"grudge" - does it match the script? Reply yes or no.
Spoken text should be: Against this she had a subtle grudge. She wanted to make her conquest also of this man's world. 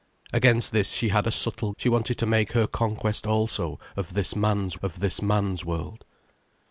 no